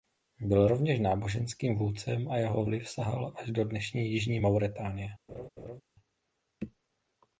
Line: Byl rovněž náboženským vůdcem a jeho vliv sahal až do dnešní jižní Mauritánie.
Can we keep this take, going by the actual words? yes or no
yes